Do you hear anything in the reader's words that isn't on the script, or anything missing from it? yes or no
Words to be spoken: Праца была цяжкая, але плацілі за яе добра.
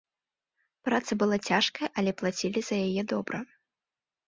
no